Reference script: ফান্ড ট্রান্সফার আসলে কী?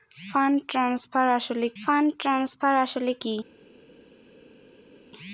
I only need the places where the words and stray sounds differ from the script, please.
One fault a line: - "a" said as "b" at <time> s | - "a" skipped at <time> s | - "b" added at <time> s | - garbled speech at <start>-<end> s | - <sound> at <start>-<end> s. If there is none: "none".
- "ফান্ড ট্রান্সফার আসলে" added at 1.8 s